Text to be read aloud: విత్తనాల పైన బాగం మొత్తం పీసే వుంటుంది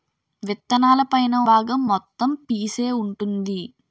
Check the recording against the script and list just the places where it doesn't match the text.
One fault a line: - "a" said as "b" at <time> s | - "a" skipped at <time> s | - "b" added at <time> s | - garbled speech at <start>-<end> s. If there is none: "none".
none